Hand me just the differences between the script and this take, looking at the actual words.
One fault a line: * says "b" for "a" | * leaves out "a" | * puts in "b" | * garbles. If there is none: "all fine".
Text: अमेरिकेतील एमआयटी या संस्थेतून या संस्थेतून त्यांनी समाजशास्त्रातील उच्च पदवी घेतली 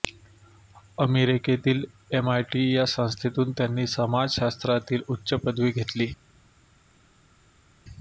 * leaves out "या संस्थेतून"